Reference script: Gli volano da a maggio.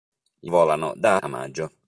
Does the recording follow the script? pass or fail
pass